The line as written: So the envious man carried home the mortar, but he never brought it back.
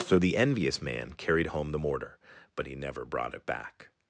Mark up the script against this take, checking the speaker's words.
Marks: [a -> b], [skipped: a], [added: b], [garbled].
So the envious man carried home the mortar, but he never brought it back.